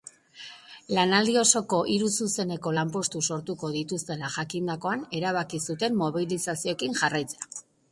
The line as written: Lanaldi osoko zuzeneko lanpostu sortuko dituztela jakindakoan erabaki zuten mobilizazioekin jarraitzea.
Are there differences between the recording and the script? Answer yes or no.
yes